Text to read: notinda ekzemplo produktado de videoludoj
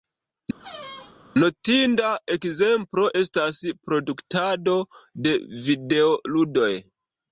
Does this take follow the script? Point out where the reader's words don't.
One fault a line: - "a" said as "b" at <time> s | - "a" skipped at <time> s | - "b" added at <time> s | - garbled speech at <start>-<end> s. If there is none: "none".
- "estas" added at 3.2 s